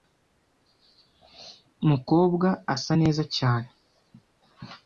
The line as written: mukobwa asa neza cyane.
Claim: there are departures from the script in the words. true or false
false